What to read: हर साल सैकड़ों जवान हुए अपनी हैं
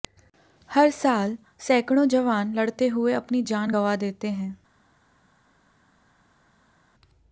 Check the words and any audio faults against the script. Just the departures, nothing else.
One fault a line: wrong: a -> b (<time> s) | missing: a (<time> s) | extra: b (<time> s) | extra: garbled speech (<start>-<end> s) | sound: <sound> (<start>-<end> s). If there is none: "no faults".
extra: लड़ते (2.5 s)
extra: जान गंवा देते (3.4 s)